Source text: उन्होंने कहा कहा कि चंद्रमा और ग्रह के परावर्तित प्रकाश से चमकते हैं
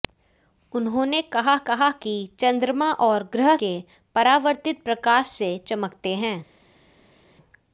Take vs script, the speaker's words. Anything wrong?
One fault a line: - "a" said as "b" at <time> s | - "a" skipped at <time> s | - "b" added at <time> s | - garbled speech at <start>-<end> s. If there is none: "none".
none